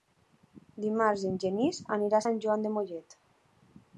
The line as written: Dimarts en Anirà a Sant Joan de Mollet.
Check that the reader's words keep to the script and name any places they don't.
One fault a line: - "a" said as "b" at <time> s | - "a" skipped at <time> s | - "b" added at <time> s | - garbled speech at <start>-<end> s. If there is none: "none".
- "Genís" added at 1.4 s